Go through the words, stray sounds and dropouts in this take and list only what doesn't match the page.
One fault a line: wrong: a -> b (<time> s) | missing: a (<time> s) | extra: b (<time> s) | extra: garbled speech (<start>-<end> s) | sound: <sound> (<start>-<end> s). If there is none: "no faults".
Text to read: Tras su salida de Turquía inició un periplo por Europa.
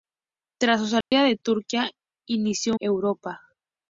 sound: dropout (1.0-1.1 s)
missing: un periplo por (2.7 s)